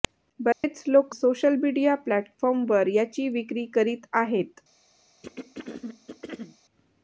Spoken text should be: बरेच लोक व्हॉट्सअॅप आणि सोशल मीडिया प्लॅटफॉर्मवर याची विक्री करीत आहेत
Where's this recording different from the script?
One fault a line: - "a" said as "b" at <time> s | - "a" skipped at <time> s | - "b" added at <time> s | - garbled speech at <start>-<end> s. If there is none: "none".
- "व्हॉट्सअॅप आणि" skipped at 1.1 s